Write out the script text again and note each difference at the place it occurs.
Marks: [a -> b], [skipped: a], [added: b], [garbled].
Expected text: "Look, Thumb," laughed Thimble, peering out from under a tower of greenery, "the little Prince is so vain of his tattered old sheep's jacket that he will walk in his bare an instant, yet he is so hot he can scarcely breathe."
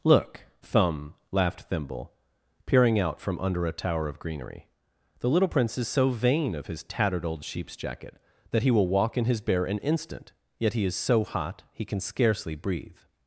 "Look, Thumb," laughed Thimble, peering out from under a tower of greenery, "the little Prince is so vain of his tattered old sheep's jacket that he will walk in his bare an instant, yet he is so hot he can scarcely breathe."